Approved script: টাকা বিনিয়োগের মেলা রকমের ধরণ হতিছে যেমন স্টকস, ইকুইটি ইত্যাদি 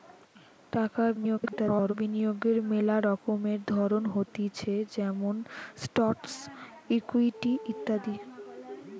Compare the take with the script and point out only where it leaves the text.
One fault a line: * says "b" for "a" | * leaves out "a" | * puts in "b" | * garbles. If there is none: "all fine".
* garbles